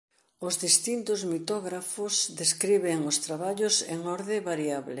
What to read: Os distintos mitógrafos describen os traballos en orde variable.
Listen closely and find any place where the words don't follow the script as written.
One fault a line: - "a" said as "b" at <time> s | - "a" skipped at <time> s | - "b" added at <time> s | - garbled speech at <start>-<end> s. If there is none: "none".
none